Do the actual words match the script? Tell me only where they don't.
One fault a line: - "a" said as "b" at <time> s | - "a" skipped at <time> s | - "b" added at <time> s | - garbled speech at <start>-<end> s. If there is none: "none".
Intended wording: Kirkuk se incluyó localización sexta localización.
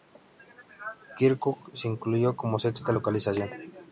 - "localización" said as "como" at 2.4 s